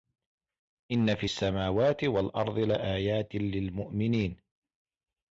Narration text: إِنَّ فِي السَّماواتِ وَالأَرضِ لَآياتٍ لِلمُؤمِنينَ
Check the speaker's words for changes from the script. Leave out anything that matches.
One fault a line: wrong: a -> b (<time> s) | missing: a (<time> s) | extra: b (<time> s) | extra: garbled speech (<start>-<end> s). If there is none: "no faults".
no faults